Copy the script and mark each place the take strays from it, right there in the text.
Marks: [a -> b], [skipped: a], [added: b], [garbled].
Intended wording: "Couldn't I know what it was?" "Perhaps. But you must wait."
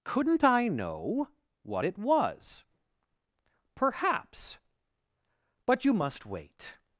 "Couldn't I know what it was?" "Perhaps. But you must wait."